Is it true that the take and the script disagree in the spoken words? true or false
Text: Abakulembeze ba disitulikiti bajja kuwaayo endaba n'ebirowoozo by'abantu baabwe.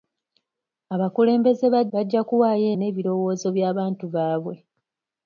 true